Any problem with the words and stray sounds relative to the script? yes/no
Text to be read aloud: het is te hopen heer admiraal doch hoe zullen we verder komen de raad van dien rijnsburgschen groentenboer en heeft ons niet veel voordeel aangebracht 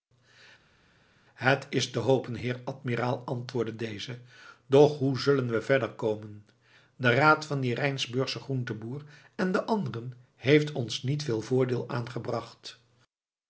yes